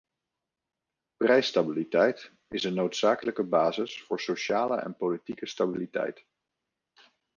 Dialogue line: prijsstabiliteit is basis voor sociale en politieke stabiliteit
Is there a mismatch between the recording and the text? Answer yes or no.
yes